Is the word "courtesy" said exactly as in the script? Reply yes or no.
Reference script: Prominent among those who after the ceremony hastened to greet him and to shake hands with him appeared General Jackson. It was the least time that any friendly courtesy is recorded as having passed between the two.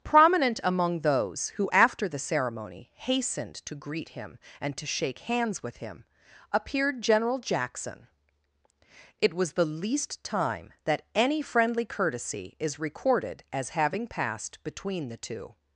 yes